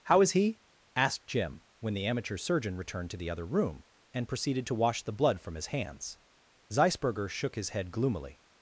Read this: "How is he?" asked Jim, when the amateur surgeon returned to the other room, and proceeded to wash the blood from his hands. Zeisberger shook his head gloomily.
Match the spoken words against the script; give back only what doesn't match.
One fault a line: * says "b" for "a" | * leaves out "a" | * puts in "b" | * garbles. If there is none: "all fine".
all fine